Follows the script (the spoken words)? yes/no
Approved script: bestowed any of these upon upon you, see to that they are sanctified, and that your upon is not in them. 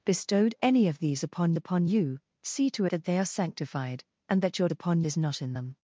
yes